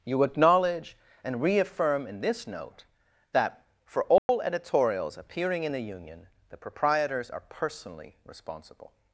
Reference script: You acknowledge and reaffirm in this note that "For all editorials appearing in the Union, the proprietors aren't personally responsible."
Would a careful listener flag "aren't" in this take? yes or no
yes